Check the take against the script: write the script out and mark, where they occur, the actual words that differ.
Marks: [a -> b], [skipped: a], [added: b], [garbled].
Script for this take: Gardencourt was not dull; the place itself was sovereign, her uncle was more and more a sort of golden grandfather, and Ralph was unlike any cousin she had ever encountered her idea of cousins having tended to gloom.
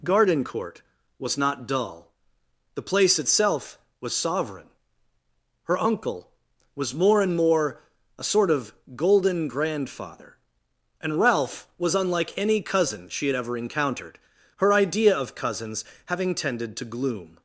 Gardencourt was not dull; the place itself was sovereign, her uncle was more and more a sort of golden grandfather, and Ralph was unlike any cousin she had ever encountered her idea of cousins having tended to gloom.